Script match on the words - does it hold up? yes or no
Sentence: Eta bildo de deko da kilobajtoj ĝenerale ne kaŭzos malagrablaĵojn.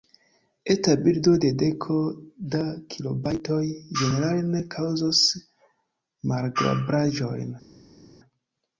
yes